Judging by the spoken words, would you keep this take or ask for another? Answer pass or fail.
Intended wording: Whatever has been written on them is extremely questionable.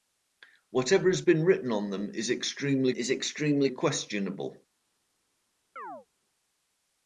fail